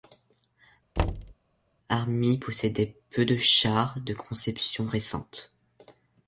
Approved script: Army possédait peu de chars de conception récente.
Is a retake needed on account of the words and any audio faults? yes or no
yes